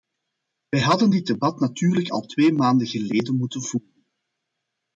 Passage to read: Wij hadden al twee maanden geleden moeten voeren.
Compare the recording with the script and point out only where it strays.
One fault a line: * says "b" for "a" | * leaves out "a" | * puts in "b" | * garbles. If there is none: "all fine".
* puts in "dit debat natuurlijk"